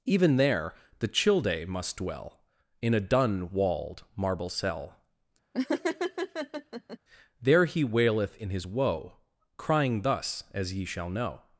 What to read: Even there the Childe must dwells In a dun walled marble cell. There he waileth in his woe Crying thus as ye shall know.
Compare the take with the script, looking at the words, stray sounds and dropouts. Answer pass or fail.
fail